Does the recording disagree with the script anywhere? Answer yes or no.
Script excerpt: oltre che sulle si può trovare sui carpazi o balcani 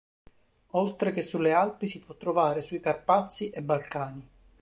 yes